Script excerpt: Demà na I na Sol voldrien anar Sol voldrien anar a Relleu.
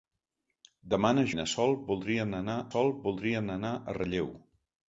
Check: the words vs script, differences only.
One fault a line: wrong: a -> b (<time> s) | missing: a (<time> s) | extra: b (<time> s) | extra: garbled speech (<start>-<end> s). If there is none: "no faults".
no faults